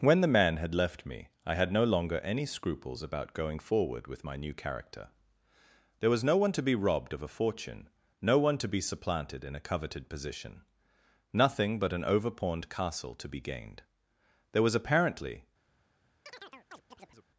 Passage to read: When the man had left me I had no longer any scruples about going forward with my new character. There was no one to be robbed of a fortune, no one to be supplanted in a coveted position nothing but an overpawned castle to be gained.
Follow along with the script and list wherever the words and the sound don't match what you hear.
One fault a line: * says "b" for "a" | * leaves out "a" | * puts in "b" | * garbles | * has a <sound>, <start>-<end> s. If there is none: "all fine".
* puts in "There was apparently"
* has a chirp, 16.3-17.3 s